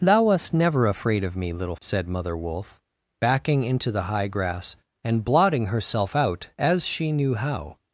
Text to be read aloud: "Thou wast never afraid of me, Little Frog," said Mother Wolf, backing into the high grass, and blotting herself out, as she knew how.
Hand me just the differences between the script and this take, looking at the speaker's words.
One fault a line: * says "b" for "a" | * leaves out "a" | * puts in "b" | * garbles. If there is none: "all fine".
* leaves out "Frog"